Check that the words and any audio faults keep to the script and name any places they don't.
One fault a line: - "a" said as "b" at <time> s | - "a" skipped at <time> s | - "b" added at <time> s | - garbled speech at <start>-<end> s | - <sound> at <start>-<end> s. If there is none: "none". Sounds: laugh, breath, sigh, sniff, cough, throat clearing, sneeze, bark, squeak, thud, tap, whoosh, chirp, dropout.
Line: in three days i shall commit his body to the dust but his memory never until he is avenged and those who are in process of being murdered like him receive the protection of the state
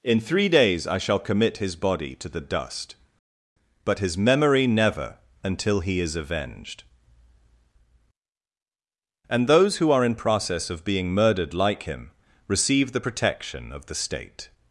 none